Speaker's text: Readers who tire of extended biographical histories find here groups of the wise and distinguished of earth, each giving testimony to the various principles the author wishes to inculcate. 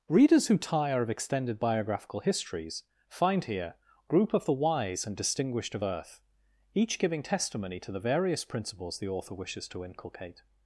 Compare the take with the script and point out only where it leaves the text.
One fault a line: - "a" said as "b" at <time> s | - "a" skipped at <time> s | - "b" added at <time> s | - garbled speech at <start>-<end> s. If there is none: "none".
- "groups" said as "group" at 4.1 s